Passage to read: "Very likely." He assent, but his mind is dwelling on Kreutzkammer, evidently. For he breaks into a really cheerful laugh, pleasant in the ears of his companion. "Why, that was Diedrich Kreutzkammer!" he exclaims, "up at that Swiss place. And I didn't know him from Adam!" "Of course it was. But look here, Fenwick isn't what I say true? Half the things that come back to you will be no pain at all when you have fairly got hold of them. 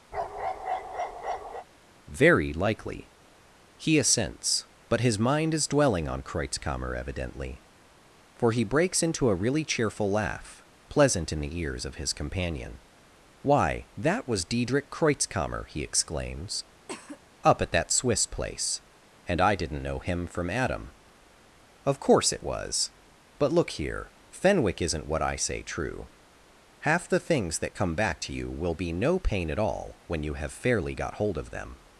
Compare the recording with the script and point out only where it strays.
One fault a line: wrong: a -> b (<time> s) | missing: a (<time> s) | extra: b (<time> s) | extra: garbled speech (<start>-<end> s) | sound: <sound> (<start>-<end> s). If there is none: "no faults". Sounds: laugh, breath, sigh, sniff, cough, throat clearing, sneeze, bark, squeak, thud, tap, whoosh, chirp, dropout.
sound: bark (0.1-1.7 s)
wrong: assent -> assents (4.0 s)
sound: cough (16.9-17.2 s)